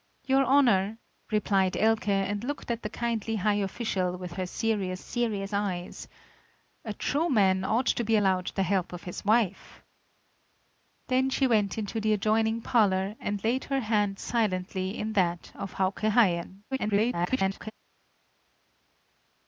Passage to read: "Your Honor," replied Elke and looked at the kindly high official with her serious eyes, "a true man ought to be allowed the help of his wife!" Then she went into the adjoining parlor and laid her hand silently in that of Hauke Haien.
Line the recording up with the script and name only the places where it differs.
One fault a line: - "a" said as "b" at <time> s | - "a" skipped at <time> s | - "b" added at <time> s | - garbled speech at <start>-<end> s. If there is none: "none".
- "serious" added at 5.0 s
- garbled speech at 16.7-17.7 s